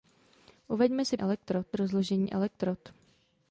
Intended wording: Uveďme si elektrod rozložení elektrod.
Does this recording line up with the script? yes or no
yes